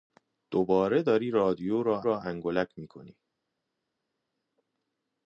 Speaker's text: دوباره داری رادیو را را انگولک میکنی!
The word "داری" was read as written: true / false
true